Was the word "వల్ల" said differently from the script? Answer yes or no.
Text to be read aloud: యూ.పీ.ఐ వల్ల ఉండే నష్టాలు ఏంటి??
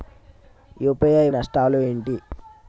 yes